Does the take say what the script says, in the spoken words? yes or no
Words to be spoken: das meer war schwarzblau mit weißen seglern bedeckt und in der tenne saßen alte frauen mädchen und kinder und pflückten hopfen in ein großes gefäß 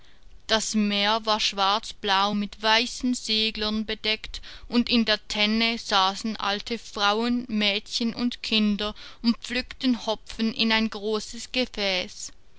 yes